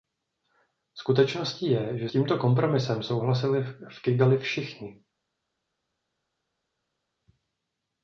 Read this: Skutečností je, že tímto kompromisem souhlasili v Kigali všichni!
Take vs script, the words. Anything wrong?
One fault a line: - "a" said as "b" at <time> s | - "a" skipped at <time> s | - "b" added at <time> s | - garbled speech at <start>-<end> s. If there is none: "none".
none